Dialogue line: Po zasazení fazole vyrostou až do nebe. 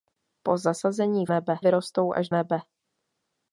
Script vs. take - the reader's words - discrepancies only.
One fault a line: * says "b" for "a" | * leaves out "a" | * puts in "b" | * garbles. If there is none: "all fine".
* says "nebe" for "fazole"
* leaves out "do"